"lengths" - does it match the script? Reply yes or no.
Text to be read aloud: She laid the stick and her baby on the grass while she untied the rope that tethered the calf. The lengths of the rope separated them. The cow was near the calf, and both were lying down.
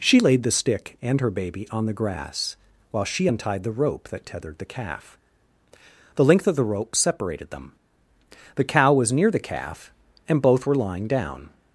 no